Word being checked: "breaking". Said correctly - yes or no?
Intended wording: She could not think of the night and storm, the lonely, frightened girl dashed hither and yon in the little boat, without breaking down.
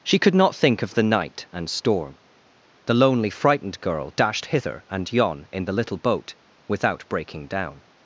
yes